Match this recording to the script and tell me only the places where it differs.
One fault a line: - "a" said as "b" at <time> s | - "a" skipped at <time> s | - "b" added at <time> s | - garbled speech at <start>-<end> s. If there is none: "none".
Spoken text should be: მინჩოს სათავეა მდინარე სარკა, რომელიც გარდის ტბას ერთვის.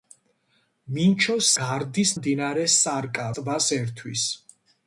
- "სათავეა" said as "გარდის" at 1.6 s
- "რომელიც გარდის" skipped at 3.3 s